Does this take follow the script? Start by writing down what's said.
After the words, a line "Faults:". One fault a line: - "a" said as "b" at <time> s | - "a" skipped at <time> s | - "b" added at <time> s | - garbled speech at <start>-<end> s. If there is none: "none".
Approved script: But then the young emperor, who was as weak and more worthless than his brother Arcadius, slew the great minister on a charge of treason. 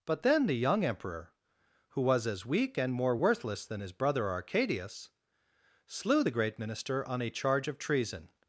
But then the young emperor, who was as weak and more worthless than his brother Arcadius, slew the great minister on a charge of treason.
Faults:
none